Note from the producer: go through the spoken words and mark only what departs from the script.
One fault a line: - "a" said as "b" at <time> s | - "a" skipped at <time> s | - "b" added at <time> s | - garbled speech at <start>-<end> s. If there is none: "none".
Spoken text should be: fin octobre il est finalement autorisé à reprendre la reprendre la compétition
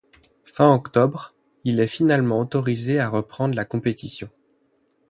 - "reprendre la" skipped at 3.6 s